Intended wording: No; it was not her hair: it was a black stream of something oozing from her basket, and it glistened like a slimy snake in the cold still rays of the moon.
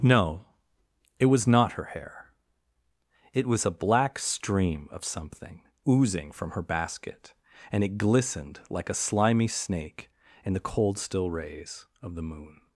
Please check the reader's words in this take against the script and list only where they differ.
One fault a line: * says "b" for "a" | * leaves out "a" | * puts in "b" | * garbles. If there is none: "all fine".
all fine